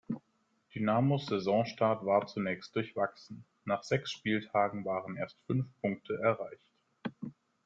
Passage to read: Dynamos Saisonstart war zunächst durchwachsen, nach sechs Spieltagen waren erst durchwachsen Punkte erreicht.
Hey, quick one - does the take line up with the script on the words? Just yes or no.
no